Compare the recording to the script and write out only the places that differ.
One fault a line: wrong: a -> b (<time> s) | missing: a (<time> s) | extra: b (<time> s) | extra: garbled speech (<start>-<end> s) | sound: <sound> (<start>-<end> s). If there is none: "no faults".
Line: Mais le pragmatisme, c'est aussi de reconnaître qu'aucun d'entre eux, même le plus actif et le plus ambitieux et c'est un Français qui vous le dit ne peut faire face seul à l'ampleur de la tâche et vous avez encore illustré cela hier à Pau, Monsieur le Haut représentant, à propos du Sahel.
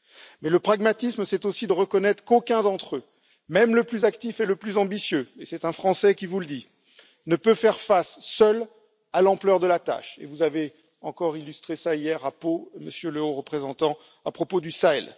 no faults